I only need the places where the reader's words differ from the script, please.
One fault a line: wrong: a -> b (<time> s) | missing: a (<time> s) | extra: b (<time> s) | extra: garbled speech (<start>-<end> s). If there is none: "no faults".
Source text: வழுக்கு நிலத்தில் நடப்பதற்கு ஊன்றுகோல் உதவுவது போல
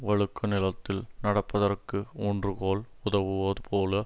no faults